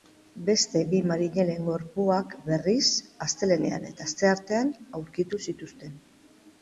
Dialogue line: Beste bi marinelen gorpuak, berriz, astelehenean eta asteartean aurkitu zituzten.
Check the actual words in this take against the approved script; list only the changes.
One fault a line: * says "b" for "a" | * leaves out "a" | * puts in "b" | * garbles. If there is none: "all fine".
all fine